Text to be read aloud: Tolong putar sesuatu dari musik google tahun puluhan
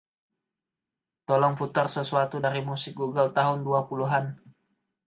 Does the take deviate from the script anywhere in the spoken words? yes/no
yes